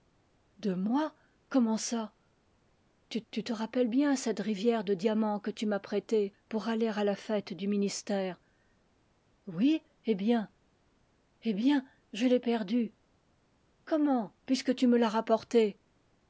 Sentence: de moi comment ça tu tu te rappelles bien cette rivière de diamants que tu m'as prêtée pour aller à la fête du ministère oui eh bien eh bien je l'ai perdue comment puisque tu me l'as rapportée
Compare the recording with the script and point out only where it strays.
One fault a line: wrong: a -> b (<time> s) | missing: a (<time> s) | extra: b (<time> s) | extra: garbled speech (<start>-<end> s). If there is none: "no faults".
no faults